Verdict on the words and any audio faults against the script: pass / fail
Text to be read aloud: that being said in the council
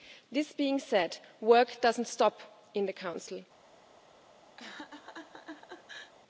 fail